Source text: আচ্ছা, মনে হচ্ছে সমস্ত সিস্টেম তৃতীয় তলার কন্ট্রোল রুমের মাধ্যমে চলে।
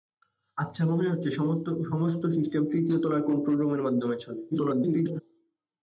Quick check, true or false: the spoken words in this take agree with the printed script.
false